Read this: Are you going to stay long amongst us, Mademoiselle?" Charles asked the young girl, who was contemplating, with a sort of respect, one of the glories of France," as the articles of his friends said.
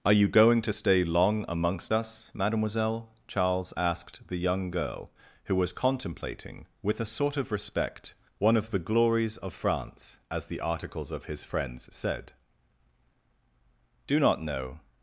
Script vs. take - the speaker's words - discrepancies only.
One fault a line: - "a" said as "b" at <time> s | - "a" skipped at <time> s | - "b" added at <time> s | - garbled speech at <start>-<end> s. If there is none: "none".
- "do not know" added at 14.1 s